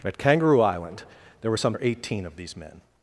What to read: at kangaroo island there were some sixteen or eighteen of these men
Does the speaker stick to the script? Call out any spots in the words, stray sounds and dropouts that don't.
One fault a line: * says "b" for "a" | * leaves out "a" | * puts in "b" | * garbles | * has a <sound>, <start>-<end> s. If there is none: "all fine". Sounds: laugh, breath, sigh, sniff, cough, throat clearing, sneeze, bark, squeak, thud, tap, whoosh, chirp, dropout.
* leaves out "sixteen"